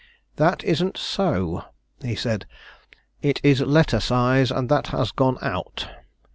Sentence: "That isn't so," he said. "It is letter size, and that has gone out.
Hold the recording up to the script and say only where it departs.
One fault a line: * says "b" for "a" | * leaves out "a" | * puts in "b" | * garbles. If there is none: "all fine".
all fine